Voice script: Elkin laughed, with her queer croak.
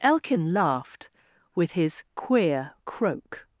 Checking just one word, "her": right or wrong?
wrong